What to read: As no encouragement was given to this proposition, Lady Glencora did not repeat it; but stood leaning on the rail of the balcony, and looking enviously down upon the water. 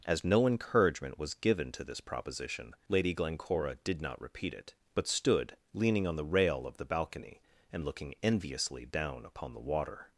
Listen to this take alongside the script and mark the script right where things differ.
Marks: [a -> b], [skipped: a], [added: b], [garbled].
As no encouragement was given to this proposition, Lady Glencora did not repeat it; but stood leaning on the rail of the balcony, and looking enviously down upon the water.